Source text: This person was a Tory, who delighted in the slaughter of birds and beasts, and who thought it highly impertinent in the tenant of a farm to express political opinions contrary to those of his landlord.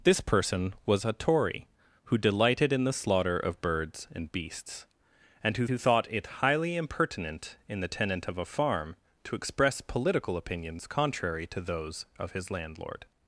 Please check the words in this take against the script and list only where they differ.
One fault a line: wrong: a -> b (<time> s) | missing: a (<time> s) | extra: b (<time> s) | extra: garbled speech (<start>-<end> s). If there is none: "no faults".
extra: who (5.7 s)